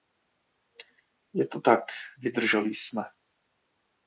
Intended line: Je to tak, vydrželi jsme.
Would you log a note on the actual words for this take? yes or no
no